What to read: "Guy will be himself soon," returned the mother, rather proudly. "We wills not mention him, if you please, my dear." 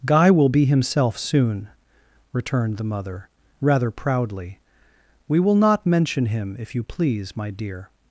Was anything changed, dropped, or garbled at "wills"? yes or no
yes